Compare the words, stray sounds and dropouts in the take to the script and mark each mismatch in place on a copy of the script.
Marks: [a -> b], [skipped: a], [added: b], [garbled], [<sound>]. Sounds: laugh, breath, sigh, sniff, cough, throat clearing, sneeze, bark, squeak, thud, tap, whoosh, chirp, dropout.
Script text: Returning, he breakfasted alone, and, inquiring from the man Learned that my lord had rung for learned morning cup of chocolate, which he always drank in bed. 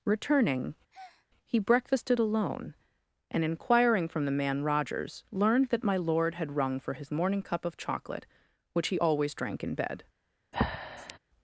Returning, [breath] he breakfasted alone, and, inquiring from the man [added: Rogers] Learned that my lord had rung for [learned -> his] morning cup of chocolate, which he always drank in bed. [breath]